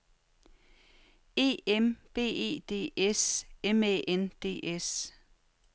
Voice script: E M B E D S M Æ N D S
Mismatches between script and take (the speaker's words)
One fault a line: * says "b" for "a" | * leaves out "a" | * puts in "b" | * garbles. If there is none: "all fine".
all fine